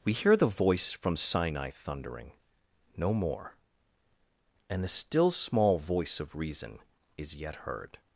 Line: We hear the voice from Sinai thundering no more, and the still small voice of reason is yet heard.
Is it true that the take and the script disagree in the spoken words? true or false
false